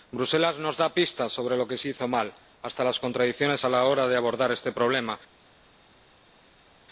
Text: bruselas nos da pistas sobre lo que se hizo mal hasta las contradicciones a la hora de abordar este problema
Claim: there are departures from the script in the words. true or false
false